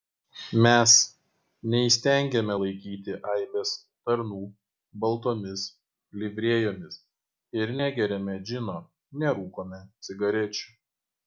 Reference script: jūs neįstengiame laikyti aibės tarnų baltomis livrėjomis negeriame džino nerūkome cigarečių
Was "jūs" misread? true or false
true